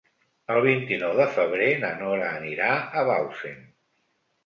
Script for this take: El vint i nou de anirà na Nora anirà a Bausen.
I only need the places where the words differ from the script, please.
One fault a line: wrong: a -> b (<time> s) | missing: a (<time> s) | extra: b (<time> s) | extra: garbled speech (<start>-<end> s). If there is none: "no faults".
wrong: anirà -> febrer (1.4 s)